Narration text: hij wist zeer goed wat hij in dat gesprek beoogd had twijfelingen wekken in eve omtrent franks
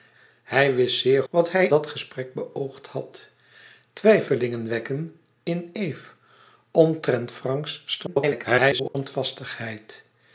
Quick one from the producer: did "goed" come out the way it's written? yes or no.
no